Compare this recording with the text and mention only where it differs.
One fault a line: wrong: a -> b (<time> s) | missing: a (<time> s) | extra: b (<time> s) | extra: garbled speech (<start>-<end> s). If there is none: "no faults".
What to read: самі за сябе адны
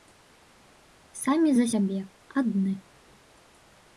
no faults